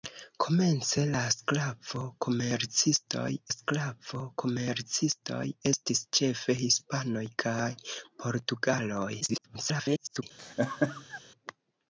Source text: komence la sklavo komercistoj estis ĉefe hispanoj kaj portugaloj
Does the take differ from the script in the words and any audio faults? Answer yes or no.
yes